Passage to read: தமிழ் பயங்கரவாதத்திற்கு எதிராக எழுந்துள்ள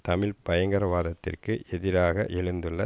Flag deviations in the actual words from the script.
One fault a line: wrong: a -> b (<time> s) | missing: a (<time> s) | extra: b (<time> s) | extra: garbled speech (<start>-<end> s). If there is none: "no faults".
no faults